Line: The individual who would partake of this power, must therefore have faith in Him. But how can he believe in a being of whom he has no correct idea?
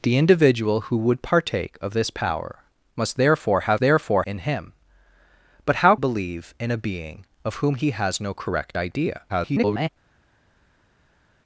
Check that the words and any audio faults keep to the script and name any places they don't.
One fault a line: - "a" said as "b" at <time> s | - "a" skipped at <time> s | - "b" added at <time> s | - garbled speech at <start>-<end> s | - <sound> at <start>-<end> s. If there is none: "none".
- "faith" said as "therefore" at 3.8 s
- "can he" skipped at 6.0 s
- garbled speech at 9.3-9.9 s